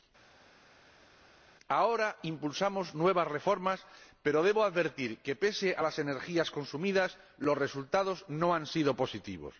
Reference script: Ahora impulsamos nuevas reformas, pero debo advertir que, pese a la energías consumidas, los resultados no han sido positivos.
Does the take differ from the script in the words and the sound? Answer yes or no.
yes